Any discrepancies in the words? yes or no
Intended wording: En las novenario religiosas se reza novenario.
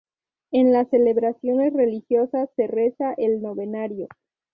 yes